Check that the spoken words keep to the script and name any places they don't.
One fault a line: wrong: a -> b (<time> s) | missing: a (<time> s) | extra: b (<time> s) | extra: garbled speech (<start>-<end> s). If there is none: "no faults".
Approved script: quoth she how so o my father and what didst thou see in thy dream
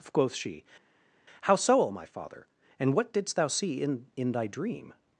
extra: in (4.2 s)